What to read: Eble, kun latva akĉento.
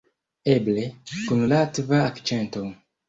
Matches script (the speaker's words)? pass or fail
pass